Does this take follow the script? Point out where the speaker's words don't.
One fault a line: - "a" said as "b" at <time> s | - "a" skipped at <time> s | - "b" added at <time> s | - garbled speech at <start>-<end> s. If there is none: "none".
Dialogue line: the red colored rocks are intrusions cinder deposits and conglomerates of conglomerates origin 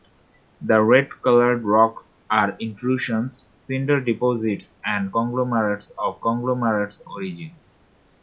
none